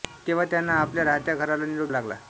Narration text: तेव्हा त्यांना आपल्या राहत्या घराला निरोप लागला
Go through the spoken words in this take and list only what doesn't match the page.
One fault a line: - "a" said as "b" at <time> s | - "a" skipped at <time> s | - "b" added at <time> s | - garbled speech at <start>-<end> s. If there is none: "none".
none